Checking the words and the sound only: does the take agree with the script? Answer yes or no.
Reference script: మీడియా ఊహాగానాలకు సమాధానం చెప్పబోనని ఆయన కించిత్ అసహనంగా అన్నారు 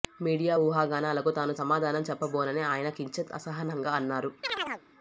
no